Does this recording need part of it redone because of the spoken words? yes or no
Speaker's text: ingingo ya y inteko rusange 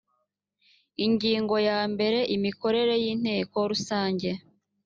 yes